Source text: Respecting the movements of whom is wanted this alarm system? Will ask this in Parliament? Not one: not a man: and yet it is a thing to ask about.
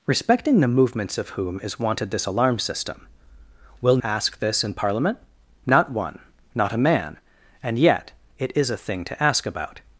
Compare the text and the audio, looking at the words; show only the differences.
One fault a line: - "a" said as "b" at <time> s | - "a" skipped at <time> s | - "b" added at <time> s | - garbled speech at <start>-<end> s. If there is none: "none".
none